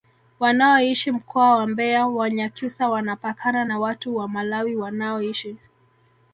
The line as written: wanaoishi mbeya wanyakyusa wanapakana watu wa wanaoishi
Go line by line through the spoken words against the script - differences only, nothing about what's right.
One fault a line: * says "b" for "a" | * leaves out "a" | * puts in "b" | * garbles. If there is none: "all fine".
* puts in "mkoa wa"
* puts in "na"
* puts in "malawi"